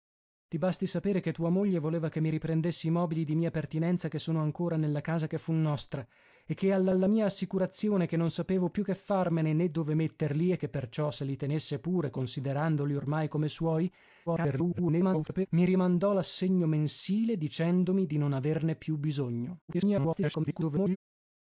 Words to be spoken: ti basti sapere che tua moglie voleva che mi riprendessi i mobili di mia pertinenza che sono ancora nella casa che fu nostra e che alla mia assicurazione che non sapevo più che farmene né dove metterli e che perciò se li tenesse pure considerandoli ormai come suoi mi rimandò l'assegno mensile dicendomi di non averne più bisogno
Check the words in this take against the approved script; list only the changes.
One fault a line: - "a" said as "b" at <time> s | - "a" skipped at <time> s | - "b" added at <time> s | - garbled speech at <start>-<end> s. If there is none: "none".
- "alla" added at 6.9 s
- garbled speech at 14.3-15.5 s
- garbled speech at 19.7-21.0 s